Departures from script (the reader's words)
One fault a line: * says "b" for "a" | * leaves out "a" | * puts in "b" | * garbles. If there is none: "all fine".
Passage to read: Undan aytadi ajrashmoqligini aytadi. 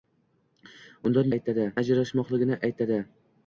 all fine